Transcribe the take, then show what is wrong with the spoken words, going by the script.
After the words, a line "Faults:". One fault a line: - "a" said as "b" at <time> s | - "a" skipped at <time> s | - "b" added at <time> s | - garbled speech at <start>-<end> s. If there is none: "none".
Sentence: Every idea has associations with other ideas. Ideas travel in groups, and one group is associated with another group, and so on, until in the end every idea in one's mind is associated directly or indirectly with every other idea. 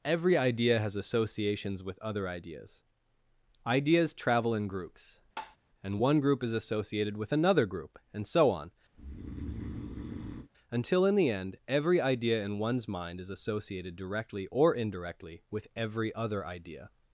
Every idea has associations with other ideas. Ideas travel in groups, and one group is associated with another group, and so on, until in the end every idea in one's mind is associated directly or indirectly with every other idea.
Faults:
none